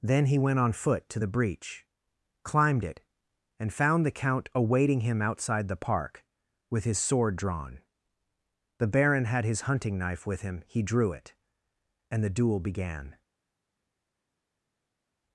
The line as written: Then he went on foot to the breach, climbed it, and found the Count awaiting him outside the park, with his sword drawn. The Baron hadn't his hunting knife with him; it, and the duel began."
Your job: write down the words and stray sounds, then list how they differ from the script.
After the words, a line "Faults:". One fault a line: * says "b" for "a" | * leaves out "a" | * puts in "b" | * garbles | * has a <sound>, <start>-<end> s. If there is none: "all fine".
Then he went on foot to the breach, climbed it, and found the Count awaiting him outside the park, with his sword drawn. The Baron had his hunting knife with him; he drew it, and the duel began."
Faults:
* says "had" for "hadn't"
* puts in "he drew"